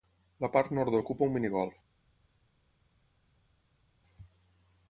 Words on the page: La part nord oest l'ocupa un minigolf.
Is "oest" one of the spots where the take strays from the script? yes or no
yes